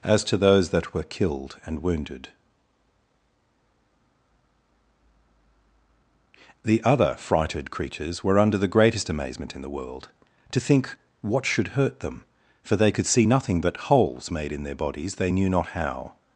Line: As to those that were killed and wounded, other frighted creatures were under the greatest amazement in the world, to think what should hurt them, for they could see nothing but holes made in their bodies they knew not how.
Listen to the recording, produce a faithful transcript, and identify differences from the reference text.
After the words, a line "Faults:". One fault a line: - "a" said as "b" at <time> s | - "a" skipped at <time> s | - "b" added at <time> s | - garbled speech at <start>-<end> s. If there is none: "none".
As to those that were killed and wounded, the other frighted creatures were under the greatest amazement in the world, to think what should hurt them, for they could see nothing but holes made in their bodies they knew not how.
Faults:
- "the" added at 6.6 s